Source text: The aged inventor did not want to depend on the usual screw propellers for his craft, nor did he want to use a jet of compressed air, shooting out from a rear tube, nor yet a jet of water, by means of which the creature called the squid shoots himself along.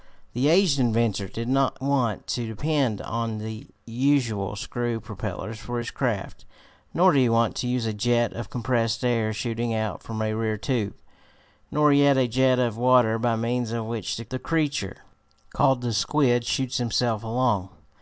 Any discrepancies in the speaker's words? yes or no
no